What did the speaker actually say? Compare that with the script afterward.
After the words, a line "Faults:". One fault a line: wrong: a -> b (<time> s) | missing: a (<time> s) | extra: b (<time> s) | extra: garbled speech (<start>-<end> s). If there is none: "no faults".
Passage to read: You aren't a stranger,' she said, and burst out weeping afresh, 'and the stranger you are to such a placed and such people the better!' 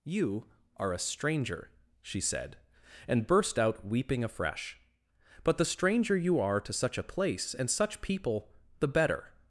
You are a stranger,' she said, and burst out weeping afresh, 'but the stranger you are to such a place and such people the better!'
Faults:
wrong: aren't -> are (0.8 s)
wrong: and -> but (5.4 s)
wrong: placed -> place (7.0 s)